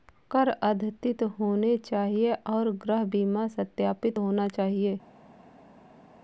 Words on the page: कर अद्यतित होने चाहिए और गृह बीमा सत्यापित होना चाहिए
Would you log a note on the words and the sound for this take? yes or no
no